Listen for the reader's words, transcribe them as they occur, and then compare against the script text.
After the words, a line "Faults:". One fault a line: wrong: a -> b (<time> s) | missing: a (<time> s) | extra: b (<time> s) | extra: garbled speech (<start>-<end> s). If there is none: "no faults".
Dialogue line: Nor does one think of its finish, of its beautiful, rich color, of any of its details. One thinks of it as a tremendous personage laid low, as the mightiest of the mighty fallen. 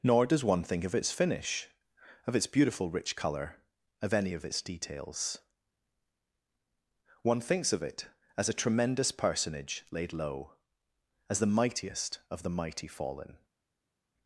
Nor does one think of its finish, of its beautiful, rich color, of any of its details. One thinks of it as a tremendous personage laid low, as the mightiest of the mighty fallen.
Faults:
no faults